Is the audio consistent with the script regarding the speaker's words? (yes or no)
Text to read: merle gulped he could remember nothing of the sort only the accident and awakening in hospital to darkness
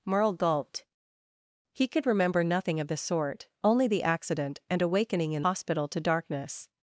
yes